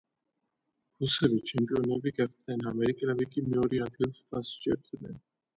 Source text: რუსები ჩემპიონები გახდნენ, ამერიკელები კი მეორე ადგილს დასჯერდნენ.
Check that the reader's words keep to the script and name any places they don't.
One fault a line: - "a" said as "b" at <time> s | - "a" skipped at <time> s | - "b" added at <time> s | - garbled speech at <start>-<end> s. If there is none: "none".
none